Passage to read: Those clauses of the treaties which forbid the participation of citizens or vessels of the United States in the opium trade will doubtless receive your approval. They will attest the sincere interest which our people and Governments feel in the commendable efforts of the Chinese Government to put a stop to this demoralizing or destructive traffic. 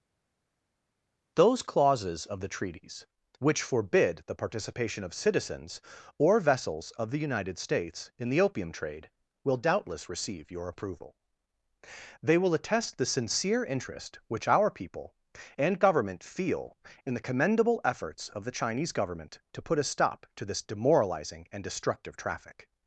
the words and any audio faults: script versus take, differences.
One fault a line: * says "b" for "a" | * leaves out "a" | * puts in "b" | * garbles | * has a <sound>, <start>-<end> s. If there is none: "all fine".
* says "Government" for "Governments"
* says "and" for "or"